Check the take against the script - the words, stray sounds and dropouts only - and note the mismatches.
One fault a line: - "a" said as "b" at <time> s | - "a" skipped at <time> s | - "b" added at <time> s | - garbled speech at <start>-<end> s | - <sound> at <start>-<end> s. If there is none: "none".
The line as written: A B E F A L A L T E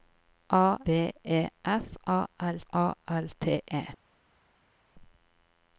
none